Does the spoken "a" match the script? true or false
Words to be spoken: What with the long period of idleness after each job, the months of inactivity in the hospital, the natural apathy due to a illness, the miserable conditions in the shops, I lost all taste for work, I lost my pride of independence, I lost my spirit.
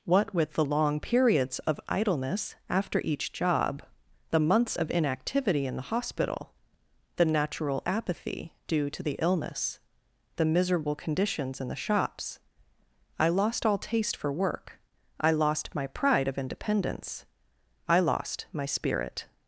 false